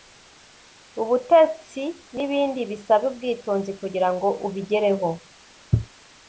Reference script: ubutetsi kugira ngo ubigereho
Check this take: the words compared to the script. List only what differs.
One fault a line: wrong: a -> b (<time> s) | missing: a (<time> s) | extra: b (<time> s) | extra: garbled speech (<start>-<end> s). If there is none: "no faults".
extra: n'ibindi bisaba ubwitonzi (2.1 s)